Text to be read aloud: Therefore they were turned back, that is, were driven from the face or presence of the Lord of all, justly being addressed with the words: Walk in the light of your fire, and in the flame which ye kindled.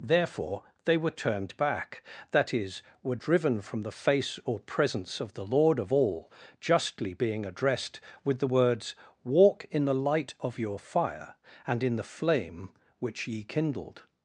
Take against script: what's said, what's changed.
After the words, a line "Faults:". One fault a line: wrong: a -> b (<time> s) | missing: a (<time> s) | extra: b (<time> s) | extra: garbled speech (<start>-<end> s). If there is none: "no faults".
Therefore they were turned back, that is, were driven from the face or presence of the Lord of all, justly being addressed with the words: Walk in the light of your fire, and in the flame which ye kindled.
Faults:
no faults